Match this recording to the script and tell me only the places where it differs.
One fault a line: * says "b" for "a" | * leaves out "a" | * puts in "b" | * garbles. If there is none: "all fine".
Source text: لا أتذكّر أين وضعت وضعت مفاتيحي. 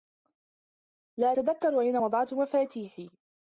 * leaves out "وضعت"